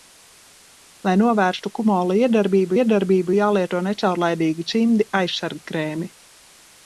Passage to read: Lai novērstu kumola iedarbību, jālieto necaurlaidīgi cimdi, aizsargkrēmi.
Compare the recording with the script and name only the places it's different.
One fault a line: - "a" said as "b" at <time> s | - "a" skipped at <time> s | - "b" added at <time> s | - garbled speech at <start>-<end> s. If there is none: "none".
- "iedarbību" added at 2.8 s